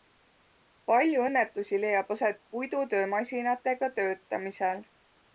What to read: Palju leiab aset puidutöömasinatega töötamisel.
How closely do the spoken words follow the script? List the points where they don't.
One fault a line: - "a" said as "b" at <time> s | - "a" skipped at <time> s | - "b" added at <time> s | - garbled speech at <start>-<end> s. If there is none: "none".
- "õnnetusi" added at 1.2 s